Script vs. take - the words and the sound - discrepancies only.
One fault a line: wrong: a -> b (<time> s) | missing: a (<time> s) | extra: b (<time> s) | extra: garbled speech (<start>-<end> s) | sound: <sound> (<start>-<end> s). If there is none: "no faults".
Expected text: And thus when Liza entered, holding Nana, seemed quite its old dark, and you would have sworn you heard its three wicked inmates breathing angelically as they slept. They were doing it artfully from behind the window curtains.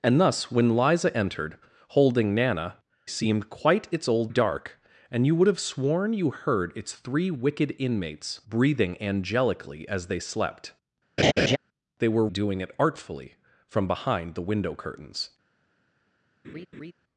sound: laugh (11.2-11.6 s)
sound: laugh (16.4-16.9 s)